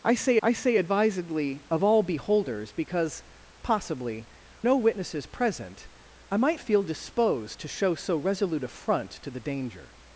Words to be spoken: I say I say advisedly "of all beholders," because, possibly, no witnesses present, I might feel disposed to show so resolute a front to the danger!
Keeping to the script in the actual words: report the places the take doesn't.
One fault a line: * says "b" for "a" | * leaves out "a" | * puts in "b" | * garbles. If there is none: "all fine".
all fine